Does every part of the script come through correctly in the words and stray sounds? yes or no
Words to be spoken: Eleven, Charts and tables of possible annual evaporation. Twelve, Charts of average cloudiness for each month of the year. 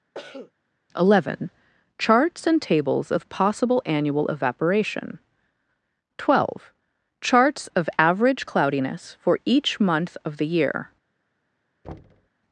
no